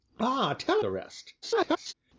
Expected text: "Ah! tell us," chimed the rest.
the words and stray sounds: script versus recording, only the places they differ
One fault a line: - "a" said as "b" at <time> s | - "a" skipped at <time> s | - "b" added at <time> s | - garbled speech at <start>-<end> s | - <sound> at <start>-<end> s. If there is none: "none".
- "us chimed" skipped at 0.8 s
- garbled speech at 1.4-1.9 s